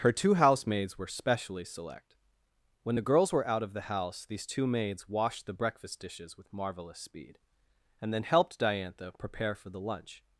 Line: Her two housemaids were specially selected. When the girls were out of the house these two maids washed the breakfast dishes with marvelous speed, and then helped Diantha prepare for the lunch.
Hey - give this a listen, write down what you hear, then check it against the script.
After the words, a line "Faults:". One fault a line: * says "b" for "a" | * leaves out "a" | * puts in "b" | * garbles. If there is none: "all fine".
Her two housemaids were specially select. When the girls were out of the house these two maids washed the breakfast dishes with marvelous speed, and then helped Diantha prepare for the lunch.
Faults:
* says "select" for "selected"